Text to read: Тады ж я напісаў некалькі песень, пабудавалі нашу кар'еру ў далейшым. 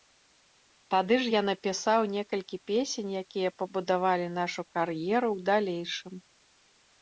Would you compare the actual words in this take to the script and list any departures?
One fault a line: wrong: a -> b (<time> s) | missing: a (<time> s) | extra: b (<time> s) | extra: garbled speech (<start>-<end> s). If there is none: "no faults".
extra: якія (3.2 s)